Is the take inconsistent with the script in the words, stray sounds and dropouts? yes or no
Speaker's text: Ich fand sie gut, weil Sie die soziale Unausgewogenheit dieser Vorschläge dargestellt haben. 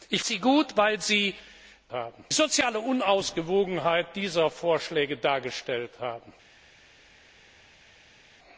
yes